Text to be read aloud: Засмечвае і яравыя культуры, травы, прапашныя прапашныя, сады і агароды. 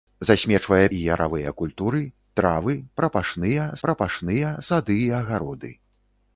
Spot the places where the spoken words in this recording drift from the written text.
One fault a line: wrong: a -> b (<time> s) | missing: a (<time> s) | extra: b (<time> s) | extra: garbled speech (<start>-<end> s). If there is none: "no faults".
no faults